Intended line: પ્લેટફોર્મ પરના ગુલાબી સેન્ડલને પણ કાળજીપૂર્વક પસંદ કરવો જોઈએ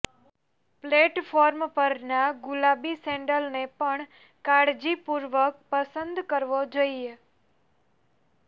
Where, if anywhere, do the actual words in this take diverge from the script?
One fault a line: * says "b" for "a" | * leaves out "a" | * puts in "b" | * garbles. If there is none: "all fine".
all fine